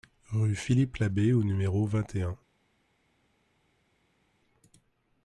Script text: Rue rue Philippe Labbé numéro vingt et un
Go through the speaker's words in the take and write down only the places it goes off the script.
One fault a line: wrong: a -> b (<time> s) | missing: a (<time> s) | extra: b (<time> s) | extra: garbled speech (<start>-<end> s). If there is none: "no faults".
missing: rue (0.6 s)
extra: au (1.3 s)